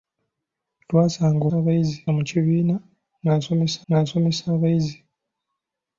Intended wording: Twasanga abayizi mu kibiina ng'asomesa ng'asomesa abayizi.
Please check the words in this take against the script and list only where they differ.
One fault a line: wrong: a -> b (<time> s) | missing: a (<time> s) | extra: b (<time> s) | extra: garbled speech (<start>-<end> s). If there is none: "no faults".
no faults